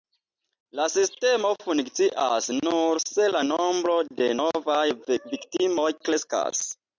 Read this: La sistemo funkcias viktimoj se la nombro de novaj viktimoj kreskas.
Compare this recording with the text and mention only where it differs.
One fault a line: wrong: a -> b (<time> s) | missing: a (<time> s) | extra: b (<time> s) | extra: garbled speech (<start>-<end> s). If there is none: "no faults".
wrong: viktimoj -> nur (2.6 s)